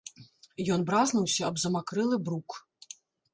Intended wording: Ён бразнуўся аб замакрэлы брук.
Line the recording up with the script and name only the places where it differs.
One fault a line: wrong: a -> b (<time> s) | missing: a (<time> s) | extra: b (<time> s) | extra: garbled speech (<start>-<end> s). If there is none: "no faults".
no faults